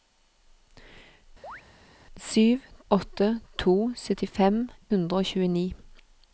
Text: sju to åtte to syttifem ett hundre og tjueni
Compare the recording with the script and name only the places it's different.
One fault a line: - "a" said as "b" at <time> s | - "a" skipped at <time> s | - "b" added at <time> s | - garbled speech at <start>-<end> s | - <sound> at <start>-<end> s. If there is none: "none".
- chirp at 1.4-1.6 s
- "to" skipped at 2.6 s
- "ett" skipped at 4.6 s